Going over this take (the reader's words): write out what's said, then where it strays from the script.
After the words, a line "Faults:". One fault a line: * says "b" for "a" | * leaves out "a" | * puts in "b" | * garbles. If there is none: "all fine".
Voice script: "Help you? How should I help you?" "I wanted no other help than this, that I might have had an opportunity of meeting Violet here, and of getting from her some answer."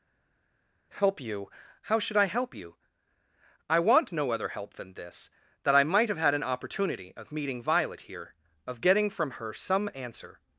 "Help you? How should I help you?" "I want no other help than this, that I might have had an opportunity of meeting Violet here, of getting from her some answer."
Faults:
* says "want" for "wanted"
* leaves out "and"